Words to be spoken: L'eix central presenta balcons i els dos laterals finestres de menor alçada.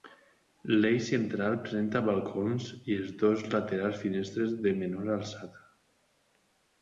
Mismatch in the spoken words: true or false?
false